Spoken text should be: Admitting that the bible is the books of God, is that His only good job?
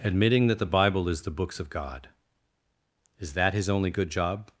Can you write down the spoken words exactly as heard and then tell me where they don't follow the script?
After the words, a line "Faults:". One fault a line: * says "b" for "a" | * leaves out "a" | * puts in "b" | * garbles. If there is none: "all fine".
Admitting that the bible is the books of God, is that His only good job?
Faults:
all fine